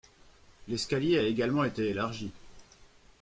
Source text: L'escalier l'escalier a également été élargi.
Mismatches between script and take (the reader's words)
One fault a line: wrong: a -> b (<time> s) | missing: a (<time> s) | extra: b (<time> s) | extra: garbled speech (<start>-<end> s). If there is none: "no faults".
missing: l'escalier (1.2 s)